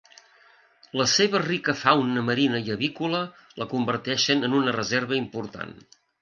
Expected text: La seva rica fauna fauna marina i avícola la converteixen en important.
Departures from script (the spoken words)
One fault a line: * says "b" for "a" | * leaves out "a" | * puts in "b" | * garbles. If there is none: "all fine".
* leaves out "fauna"
* puts in "una reserva"